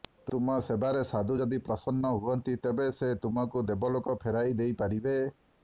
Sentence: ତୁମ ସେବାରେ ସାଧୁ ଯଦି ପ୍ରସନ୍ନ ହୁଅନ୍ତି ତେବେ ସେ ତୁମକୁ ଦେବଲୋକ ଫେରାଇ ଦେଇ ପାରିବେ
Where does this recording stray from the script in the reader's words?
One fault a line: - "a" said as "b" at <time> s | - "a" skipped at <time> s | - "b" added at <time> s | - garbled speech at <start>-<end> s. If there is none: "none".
none